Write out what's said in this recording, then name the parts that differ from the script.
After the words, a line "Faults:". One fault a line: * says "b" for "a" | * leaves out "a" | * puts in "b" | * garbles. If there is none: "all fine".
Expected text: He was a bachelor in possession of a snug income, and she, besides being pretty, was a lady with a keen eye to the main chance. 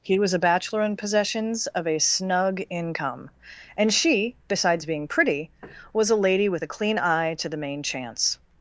He was a bachelor in possessions of a snug income, and she, besides being pretty, was a lady with a clean eye to the main chance.
Faults:
* says "possessions" for "possession"
* says "clean" for "keen"